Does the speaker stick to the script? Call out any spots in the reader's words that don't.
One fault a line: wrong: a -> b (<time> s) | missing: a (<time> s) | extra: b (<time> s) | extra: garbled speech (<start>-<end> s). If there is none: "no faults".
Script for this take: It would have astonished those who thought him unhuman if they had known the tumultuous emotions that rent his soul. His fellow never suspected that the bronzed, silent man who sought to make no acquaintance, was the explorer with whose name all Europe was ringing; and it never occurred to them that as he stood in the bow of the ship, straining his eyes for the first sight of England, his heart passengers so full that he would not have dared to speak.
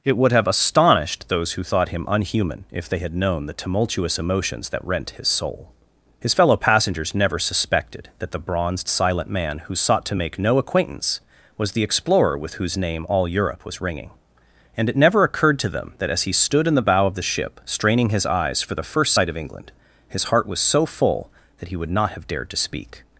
extra: passengers (6.6 s)
wrong: passengers -> was (20.5 s)